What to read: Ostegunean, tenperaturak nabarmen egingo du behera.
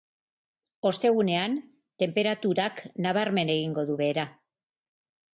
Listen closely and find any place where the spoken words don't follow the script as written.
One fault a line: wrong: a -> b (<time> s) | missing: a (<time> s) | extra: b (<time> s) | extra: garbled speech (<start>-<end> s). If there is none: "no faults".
no faults